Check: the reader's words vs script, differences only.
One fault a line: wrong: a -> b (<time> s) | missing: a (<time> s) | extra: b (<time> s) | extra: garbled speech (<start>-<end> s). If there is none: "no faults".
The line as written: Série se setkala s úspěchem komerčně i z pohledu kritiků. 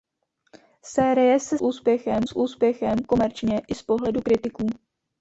wrong: setkala -> úspěchem (1.6 s)